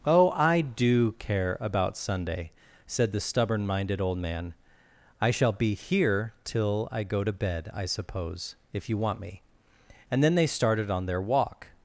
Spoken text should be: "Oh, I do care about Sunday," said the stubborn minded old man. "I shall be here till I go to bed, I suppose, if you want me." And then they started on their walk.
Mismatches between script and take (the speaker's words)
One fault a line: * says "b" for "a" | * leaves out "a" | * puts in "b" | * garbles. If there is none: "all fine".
all fine